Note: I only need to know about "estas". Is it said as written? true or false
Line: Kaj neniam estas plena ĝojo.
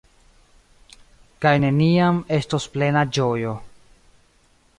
false